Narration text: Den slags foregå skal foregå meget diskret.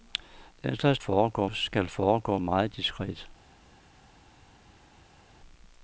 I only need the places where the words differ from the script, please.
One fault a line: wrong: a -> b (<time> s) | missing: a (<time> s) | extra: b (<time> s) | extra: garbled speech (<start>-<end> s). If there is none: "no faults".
no faults